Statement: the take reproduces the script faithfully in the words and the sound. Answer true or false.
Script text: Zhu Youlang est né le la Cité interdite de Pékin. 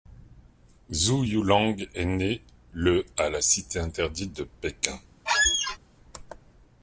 false